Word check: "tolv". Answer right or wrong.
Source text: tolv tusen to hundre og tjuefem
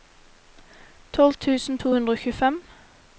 right